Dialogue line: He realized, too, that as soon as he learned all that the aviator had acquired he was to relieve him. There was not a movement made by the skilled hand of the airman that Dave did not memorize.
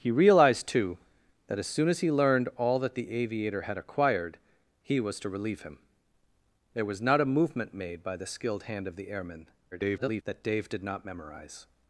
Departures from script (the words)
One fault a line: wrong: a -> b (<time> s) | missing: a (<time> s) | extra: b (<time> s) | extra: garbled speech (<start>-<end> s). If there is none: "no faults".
extra: garbled speech (9.7-10.2 s)